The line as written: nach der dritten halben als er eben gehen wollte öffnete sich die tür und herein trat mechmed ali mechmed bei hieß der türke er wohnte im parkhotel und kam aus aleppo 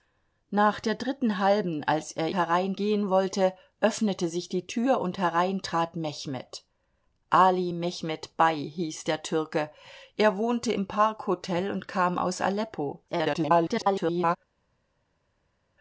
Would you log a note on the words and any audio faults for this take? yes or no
yes